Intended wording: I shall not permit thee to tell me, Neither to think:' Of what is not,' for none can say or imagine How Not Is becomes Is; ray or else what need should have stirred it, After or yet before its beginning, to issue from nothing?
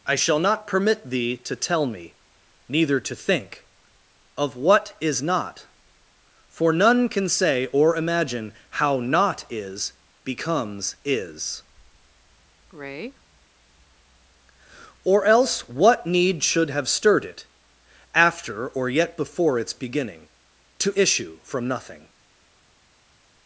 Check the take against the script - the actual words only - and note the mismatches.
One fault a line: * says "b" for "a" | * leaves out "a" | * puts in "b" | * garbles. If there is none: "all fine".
all fine